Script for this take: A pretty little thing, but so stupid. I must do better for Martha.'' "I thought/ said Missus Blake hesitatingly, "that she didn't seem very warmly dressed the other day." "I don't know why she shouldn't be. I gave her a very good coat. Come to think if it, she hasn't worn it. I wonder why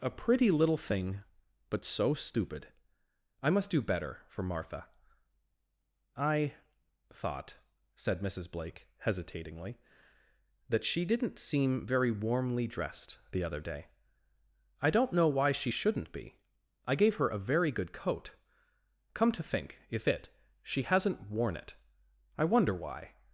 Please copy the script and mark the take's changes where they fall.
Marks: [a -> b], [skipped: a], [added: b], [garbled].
A pretty little thing, but so stupid. I must do better for Martha.'' "I thought/ said Missus Blake hesitatingly, "that she didn't seem very warmly dressed the other day." "I don't know why she shouldn't be. I gave her a very good coat. Come to think if it, she hasn't worn it. I wonder why